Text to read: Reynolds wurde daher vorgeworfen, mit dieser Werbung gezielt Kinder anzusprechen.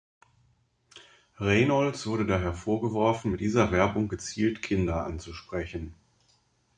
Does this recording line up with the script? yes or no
yes